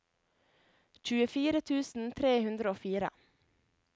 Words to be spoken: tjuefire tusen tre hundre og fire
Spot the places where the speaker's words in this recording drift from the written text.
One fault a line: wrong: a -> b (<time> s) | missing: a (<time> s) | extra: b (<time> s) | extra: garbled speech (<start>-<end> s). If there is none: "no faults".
no faults